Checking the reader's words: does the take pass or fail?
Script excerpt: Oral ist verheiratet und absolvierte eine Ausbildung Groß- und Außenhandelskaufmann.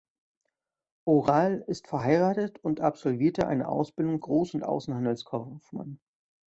pass